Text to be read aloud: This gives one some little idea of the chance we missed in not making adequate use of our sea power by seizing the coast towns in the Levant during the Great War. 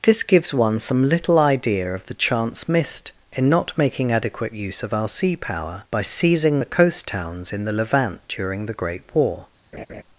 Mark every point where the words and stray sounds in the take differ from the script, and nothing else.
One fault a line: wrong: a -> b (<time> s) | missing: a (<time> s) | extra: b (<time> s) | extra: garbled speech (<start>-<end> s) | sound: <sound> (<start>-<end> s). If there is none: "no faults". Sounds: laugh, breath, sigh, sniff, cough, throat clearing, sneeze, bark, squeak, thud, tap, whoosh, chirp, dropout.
missing: we (2.7 s)
sound: laugh (9.7-10.0 s)